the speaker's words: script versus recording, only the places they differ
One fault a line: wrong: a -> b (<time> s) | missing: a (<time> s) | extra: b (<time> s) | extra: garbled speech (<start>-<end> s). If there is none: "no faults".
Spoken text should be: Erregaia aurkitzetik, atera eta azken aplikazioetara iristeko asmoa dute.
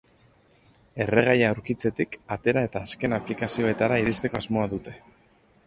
no faults